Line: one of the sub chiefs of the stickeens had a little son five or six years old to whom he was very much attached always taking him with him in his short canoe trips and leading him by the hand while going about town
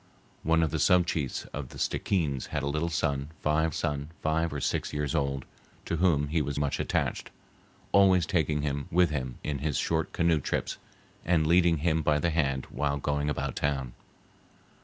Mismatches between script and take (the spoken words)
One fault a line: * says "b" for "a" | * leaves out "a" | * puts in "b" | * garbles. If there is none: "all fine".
* puts in "son five"
* leaves out "very"